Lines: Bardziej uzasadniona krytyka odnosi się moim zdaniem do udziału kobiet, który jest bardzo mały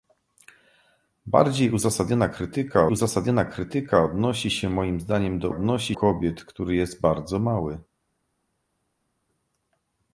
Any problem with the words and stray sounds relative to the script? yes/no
yes